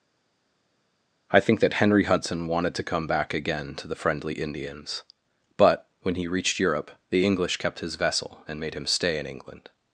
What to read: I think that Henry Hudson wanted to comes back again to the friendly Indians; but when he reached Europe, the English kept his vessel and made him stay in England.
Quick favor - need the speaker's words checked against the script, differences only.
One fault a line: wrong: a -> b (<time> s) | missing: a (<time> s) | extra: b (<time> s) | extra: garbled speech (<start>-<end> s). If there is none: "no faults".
wrong: comes -> come (2.8 s)